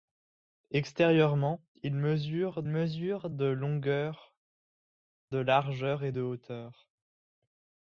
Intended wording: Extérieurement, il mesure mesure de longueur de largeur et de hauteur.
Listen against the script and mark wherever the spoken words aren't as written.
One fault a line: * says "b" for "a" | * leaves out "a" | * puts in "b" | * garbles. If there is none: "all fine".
all fine